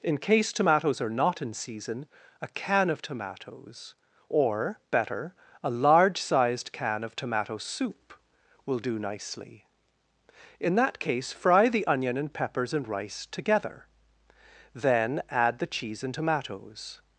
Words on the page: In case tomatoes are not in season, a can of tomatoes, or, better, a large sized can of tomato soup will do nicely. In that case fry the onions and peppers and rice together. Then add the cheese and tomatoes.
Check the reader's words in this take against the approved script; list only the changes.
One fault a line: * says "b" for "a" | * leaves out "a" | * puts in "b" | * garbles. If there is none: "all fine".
* says "onion" for "onions"